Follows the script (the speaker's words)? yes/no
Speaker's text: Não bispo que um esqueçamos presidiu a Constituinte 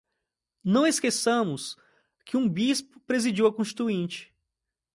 no